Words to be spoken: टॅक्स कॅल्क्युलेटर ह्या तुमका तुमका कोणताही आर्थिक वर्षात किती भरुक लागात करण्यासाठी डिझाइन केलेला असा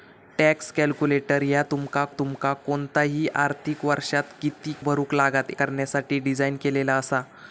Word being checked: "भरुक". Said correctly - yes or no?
yes